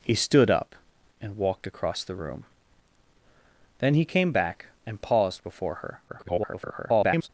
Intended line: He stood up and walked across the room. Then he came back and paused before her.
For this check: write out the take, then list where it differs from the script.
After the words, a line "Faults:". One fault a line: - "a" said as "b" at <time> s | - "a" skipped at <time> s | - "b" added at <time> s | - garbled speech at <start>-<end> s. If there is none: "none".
He stood up and walked across the room. Then he came back and paused before her. [garbled]
Faults:
- garbled speech at 6.1-7.3 s